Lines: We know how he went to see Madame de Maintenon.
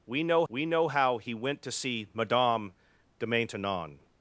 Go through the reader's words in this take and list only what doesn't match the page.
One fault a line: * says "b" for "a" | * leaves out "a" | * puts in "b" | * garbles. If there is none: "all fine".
* puts in "we know"